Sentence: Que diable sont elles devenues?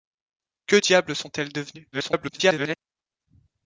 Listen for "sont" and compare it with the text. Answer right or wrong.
right